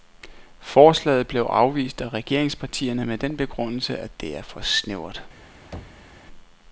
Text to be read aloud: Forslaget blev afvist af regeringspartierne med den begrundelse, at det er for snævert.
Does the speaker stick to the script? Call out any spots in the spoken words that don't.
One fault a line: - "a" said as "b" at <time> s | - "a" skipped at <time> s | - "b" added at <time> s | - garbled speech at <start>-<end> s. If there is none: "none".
none